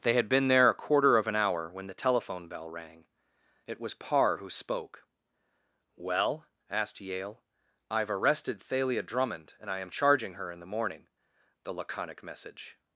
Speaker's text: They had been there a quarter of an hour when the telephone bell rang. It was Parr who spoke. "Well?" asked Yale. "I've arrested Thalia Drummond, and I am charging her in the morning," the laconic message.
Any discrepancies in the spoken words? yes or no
no